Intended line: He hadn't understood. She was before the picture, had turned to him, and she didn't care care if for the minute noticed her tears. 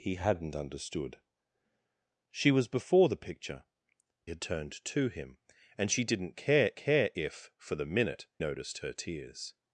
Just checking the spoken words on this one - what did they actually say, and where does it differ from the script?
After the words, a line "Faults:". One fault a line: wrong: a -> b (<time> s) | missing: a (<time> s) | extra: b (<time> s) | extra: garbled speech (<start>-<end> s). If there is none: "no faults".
He hadn't understood. She was before the picture, had turned to him, and she didn't care care if for the minute noticed her tears.
Faults:
no faults